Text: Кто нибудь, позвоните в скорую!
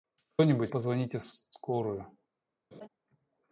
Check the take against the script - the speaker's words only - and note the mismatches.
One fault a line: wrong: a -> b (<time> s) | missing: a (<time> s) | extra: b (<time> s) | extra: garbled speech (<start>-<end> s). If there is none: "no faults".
no faults